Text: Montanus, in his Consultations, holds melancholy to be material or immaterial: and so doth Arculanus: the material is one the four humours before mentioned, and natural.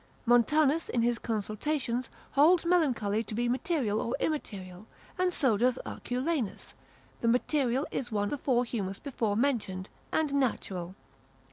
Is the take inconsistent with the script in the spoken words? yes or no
no